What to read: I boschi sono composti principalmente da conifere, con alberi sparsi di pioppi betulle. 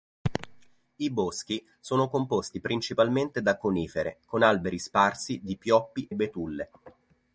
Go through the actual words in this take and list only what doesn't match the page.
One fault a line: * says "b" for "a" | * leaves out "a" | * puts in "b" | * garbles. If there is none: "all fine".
all fine